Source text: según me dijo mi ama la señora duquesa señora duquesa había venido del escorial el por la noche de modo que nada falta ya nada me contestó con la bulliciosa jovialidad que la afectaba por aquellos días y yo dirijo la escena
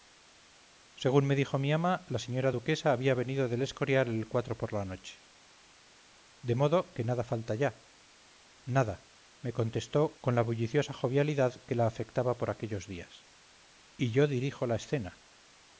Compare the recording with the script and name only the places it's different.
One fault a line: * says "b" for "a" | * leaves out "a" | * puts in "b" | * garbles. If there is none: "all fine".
* leaves out "señora duquesa"